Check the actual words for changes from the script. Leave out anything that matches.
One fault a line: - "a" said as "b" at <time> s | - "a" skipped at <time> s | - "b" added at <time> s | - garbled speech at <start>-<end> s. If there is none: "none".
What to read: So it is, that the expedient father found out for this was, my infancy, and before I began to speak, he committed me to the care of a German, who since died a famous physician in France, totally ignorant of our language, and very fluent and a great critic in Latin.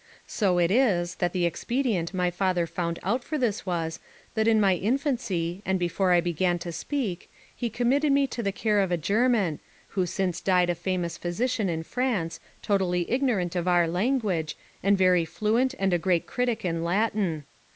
- "my" added at 2.1 s
- "that in" added at 4.3 s